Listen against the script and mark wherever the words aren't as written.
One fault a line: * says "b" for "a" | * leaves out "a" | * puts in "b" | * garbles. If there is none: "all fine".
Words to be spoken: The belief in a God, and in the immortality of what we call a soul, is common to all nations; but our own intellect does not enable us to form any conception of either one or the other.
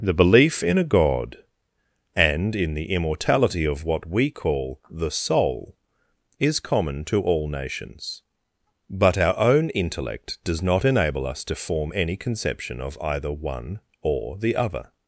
* says "the" for "a"